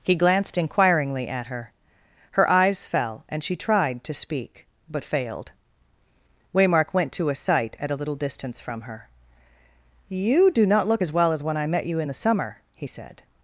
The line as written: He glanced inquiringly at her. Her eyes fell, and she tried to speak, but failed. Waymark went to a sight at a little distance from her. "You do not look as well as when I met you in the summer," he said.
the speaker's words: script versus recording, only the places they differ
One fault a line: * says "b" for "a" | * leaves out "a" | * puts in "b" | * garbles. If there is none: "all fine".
all fine